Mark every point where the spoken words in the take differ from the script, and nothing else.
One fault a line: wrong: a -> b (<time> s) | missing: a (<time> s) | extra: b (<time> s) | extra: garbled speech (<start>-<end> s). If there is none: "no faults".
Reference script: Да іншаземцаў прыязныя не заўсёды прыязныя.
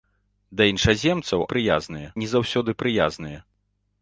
no faults